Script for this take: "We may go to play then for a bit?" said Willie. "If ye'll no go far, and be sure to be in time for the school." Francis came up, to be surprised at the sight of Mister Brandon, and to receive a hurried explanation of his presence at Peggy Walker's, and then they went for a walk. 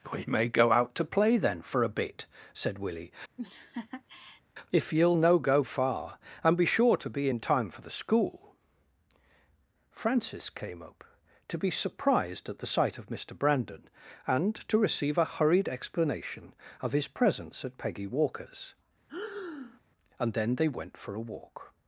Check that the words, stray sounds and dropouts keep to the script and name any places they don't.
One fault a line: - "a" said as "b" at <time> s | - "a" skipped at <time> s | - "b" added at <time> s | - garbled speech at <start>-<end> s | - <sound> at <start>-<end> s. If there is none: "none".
- "out" added at 0.7 s
- laugh at 3.4-4.4 s
- breath at 19.1-19.8 s